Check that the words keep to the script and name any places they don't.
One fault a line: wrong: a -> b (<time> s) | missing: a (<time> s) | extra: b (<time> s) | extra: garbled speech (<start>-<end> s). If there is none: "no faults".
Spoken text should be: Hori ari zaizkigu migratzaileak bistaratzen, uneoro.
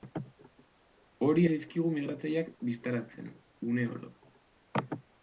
missing: ari (1.4 s)